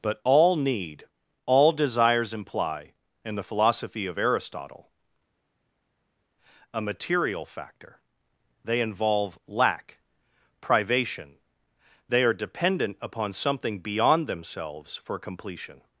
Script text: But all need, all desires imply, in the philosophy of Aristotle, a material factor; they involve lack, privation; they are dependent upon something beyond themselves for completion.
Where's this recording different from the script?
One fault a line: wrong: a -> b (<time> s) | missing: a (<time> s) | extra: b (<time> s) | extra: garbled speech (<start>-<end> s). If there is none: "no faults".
no faults